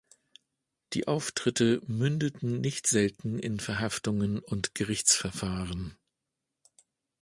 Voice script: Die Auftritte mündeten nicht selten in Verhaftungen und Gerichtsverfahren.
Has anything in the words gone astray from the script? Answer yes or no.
no